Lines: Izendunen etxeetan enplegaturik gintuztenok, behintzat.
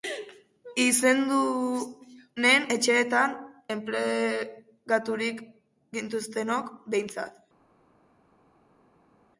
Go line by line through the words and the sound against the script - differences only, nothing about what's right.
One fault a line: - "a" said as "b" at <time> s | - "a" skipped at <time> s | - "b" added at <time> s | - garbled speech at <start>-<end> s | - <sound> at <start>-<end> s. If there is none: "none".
none